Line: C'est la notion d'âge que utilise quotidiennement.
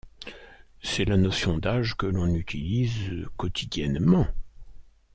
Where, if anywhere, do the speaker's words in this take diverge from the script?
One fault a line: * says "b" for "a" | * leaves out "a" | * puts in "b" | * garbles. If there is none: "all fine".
* puts in "l'on"